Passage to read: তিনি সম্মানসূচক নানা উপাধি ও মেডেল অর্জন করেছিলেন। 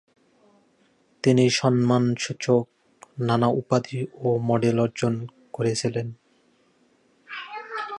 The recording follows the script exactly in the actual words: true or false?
true